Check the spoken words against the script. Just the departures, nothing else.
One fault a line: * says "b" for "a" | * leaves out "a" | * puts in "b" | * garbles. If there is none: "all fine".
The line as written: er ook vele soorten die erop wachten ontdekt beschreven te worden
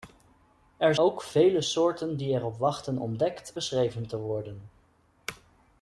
all fine